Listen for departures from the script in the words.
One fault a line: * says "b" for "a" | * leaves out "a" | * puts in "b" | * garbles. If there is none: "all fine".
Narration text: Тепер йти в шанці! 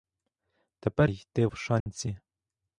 all fine